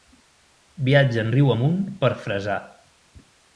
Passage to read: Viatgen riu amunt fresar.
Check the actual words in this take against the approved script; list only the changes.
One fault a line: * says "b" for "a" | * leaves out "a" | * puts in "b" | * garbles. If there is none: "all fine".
* puts in "per"